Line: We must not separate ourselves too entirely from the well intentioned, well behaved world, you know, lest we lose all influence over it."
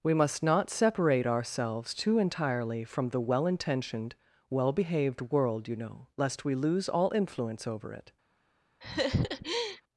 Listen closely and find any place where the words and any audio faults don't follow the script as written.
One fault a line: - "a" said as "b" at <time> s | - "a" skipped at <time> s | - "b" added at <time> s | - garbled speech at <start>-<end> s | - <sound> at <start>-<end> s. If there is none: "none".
- laugh at 8.8-9.8 s